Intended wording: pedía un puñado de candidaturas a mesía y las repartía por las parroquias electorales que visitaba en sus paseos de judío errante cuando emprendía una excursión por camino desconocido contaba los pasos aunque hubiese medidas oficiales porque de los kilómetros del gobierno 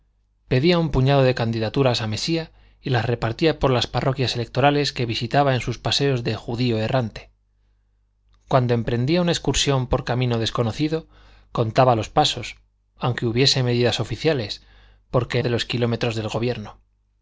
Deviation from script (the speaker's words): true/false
false